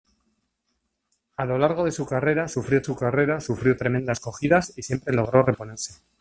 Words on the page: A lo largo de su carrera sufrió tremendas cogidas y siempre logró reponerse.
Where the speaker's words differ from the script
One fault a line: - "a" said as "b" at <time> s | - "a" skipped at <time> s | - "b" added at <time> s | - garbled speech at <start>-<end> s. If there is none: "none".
- "su carrera sufrió" added at 2.8 s